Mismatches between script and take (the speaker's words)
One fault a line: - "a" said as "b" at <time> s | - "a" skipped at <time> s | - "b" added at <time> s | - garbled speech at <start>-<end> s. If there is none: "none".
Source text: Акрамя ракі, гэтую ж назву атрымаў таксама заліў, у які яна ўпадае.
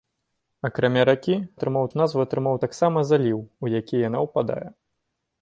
- "гэтую" said as "атрымаў" at 1.6 s